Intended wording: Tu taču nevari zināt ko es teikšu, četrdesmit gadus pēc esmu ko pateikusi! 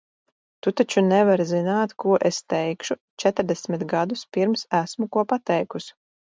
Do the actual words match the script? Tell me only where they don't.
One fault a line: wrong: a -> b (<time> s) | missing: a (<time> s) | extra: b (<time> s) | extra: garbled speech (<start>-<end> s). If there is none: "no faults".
wrong: pēc -> pirms (4.4 s)